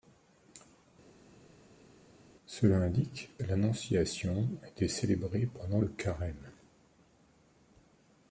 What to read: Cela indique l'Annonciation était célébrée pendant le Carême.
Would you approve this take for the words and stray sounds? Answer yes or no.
yes